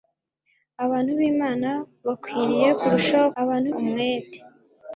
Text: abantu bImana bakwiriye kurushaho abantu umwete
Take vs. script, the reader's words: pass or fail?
pass